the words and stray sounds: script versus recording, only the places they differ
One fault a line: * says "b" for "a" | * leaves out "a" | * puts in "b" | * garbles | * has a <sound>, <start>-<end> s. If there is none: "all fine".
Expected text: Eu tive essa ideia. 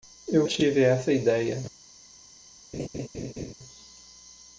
* has a laugh, 2.7-3.5 s